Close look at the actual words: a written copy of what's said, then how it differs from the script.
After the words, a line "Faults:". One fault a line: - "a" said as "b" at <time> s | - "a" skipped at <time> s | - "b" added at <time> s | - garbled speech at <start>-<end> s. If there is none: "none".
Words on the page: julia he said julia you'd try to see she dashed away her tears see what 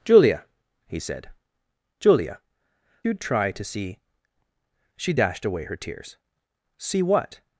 julia he said julia you'd try to see she dashed away her tears see what
Faults:
none